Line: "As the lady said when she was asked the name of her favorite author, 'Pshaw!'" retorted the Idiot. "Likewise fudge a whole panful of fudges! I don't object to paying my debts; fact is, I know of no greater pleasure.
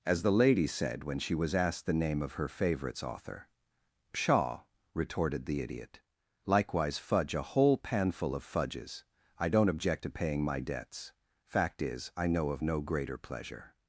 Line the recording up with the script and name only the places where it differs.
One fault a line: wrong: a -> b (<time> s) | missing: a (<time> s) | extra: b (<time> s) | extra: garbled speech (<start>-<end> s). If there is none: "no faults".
wrong: favorite -> favorites (2.5 s)